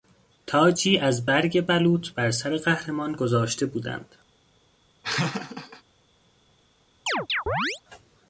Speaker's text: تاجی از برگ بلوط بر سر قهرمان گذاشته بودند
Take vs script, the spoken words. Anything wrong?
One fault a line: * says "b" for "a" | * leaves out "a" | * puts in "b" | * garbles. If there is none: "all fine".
all fine